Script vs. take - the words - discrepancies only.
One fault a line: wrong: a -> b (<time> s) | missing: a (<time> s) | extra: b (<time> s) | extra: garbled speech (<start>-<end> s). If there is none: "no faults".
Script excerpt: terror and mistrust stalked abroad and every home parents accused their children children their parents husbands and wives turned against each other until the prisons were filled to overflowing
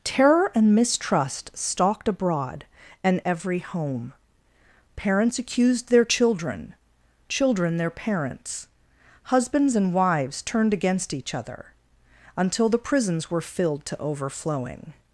no faults